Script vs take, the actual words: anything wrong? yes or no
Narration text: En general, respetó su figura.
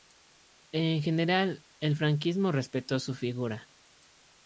yes